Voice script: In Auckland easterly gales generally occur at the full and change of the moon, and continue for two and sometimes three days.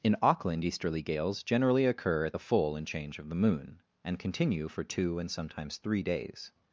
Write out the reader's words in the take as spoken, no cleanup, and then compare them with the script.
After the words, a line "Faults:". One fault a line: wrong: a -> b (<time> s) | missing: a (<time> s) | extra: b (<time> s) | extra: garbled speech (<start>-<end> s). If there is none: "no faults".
In Auckland easterly gales generally occur at the full and change of the moon, and continue for two and sometimes three days.
Faults:
no faults